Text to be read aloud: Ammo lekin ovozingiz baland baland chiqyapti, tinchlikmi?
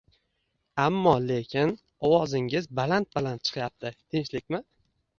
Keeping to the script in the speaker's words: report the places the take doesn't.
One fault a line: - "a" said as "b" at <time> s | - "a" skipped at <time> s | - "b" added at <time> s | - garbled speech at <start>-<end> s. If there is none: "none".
none